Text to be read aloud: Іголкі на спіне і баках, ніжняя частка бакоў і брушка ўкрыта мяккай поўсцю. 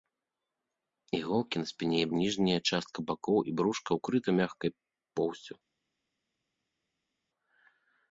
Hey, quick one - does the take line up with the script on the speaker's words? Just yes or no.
no